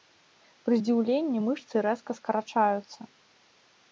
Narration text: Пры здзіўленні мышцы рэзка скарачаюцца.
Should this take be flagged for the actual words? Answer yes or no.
no